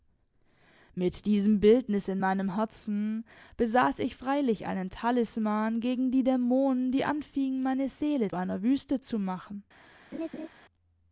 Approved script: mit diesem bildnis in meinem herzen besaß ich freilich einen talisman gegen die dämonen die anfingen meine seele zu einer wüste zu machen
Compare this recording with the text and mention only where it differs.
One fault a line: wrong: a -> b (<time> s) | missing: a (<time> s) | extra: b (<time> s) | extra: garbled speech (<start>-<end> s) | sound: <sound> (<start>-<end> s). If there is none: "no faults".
missing: zu (8.3 s)
sound: laugh (10.1-10.5 s)